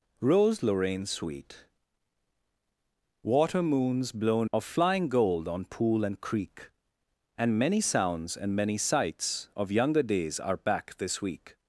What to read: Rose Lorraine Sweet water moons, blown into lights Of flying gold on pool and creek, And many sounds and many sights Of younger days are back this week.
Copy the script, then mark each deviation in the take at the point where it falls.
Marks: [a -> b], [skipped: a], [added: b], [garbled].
Rose Lorraine Sweet water moons, blown [skipped: into lights] Of flying gold on pool and creek, And many sounds and many sights Of younger days are back this week.